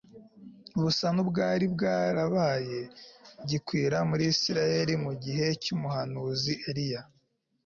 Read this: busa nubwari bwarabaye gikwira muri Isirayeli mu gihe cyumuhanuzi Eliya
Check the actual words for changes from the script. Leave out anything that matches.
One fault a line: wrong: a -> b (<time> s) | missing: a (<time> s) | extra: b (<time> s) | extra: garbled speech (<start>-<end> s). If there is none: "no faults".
no faults